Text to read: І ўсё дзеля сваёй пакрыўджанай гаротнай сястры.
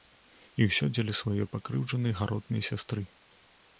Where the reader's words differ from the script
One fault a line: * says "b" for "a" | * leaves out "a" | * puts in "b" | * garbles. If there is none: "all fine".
all fine